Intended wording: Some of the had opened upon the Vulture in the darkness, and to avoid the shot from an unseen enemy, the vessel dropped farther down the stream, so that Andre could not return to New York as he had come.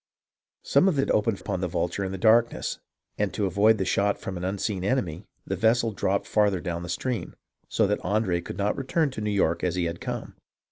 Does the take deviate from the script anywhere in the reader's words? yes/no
no